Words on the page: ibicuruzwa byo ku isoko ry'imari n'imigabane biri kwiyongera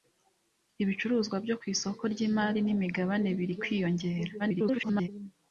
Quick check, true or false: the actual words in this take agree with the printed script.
false